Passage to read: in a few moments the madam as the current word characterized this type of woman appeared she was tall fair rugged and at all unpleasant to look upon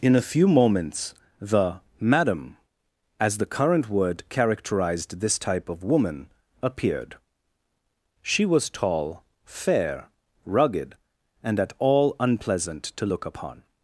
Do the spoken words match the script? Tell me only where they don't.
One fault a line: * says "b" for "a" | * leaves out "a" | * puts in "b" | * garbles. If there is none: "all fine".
all fine